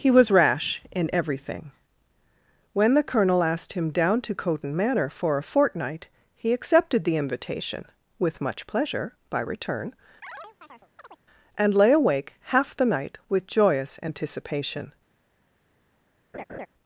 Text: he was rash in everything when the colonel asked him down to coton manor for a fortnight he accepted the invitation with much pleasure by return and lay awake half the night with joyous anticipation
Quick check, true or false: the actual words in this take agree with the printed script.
true